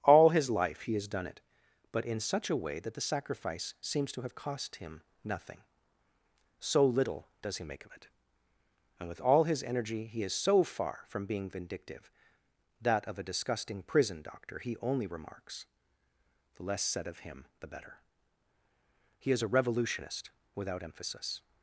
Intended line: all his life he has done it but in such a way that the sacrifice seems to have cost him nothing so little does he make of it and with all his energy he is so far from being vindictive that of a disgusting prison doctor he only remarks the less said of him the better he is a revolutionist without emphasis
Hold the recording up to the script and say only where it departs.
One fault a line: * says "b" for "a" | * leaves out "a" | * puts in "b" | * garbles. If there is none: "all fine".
all fine